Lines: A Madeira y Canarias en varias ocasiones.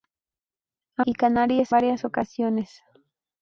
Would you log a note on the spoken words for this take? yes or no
yes